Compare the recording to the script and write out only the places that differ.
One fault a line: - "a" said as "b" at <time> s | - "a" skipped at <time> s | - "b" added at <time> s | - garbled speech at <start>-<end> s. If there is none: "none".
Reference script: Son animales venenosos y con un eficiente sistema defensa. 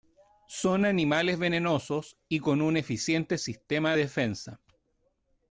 none